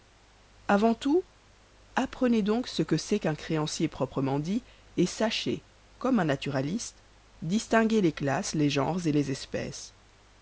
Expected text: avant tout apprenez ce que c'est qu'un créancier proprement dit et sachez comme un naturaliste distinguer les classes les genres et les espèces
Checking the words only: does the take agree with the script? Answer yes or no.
no